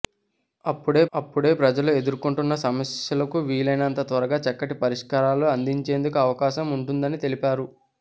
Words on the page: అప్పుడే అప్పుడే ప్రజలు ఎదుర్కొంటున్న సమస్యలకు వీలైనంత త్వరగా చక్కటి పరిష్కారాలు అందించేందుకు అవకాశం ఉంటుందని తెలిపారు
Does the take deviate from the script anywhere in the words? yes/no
no